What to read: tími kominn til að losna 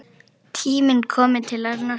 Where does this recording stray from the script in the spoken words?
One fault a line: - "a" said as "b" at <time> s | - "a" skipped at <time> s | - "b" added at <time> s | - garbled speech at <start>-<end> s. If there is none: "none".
none